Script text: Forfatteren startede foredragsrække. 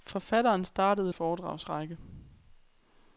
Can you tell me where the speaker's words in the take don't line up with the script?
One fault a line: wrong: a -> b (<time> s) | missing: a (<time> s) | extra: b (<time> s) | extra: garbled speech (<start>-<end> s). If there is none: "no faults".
no faults